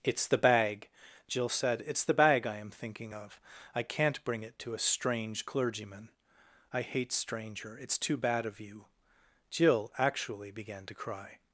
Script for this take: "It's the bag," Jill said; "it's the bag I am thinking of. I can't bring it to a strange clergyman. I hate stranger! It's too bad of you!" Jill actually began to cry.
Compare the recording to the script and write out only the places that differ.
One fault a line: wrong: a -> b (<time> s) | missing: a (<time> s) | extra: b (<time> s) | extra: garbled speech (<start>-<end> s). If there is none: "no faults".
no faults